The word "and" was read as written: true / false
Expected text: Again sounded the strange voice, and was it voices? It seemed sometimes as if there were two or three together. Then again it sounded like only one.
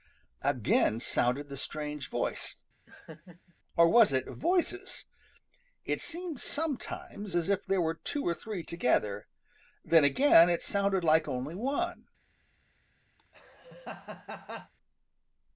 false